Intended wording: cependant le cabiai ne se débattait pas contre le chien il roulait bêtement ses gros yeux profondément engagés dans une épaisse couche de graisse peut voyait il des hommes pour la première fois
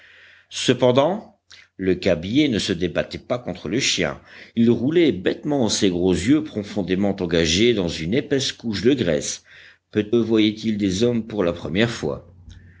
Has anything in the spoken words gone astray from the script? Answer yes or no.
no